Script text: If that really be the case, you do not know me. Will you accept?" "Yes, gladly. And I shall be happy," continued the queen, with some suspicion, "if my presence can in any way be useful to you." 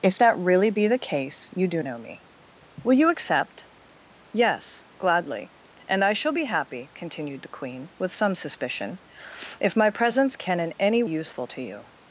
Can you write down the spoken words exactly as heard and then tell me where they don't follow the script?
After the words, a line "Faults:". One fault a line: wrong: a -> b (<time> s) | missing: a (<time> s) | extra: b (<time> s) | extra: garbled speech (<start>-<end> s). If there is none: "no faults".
If that really be the case, you do know me. Will you accept?" "Yes, gladly. And I shall be happy," continued the queen, with some suspicion, "if my presence can in any useful to you."
Faults:
missing: not (1.8 s)
missing: way be (11.0 s)